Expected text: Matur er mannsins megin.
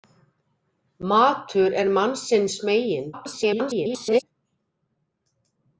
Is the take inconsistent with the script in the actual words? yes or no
yes